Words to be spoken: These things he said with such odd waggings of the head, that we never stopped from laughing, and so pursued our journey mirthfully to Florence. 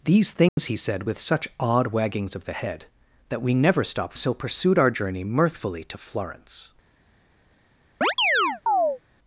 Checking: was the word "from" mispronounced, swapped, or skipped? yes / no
yes